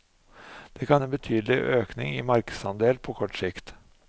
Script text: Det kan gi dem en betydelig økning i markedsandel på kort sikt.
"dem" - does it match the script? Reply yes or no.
no